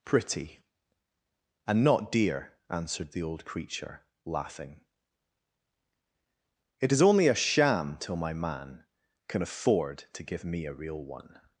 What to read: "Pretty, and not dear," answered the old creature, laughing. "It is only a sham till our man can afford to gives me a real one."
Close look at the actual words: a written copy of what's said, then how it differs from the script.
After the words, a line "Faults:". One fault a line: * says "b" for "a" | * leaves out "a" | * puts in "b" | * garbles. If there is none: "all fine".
"Pretty, and not dear," answered the old creature, laughing. "It is only a sham till my man can afford to give me a real one."
Faults:
* says "my" for "our"
* says "give" for "gives"